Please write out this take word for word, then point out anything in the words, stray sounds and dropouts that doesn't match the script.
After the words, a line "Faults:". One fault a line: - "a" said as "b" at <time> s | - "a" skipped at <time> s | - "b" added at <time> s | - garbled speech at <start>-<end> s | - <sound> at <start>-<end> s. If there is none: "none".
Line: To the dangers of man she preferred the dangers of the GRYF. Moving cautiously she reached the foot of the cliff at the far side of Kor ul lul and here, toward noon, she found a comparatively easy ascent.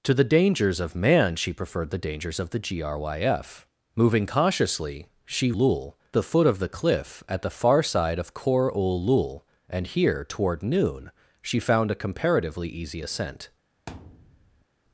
To the dangers of man she preferred the dangers of the GRYF. Moving cautiously she lul the foot of the cliff at the far side of Kor ul lul and here, toward noon, she found a comparatively easy ascent.
Faults:
- "reached" said as "lul" at 5.5 s
- thud at 13.9-14.7 s